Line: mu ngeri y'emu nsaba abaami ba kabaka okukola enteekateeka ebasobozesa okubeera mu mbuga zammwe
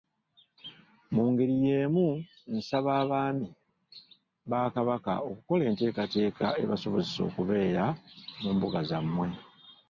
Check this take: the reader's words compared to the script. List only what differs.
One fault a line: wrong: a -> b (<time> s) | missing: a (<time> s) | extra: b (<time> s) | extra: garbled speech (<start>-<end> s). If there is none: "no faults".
no faults